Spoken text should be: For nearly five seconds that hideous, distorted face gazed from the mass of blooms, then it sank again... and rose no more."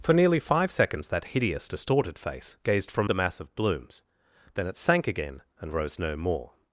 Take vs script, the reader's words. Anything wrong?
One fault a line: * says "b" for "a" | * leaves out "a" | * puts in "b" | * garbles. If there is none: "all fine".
all fine